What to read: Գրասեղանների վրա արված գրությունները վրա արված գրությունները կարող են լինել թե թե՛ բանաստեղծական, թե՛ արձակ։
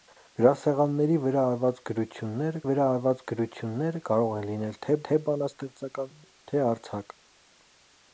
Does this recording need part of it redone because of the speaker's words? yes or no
no